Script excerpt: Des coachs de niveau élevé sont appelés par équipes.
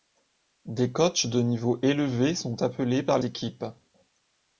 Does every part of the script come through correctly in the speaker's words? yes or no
yes